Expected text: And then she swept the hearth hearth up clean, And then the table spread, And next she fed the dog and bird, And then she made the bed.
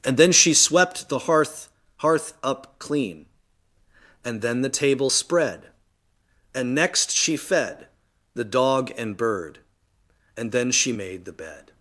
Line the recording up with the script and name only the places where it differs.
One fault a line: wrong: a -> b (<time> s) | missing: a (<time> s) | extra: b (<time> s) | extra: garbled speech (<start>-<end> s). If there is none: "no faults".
no faults